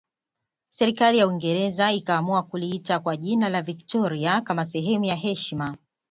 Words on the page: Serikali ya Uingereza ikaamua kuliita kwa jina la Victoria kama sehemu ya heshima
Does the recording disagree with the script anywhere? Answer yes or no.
no